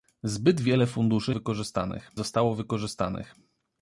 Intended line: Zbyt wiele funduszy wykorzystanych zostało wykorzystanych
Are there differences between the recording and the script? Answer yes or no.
no